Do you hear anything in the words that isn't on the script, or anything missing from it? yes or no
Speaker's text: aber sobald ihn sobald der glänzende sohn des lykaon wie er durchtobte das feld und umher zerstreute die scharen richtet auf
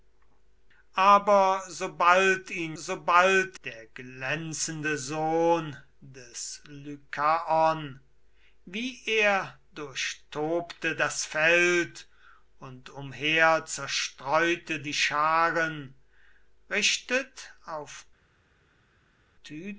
no